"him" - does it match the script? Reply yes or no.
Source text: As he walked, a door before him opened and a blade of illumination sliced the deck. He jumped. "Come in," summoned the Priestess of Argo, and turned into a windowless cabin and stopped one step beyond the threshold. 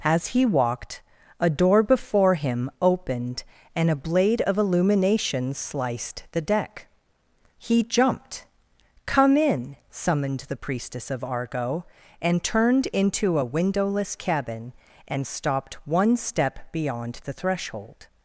yes